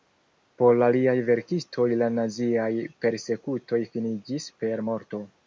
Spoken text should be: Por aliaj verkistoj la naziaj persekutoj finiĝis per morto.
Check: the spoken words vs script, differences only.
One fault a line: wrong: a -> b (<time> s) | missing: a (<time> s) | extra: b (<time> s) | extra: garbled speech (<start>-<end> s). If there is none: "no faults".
no faults